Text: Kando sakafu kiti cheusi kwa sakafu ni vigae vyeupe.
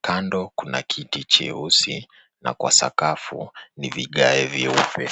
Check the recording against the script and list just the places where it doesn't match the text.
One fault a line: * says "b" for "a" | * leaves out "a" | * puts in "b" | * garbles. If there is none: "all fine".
* says "kuna" for "sakafu"
* puts in "na"